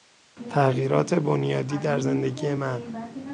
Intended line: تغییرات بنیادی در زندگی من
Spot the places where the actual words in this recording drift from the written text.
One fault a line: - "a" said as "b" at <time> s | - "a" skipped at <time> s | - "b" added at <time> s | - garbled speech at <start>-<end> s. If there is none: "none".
none